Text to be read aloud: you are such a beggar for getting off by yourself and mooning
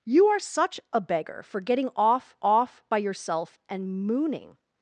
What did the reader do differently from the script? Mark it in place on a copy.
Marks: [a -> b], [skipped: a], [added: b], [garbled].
you are such a beggar for getting off [added: off] by yourself and mooning